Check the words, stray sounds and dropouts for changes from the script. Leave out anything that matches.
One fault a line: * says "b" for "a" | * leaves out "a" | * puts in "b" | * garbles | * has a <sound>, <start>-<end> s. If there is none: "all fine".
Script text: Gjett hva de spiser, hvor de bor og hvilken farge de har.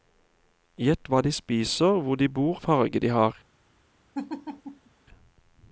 * leaves out "og hvilken"
* has a laugh, 4.1-4.9 s